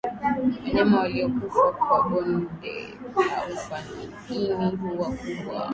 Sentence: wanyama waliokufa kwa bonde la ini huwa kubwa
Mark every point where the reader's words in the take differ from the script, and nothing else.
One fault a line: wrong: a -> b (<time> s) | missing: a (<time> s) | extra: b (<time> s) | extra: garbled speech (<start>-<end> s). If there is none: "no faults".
extra: ufa (3.5 s)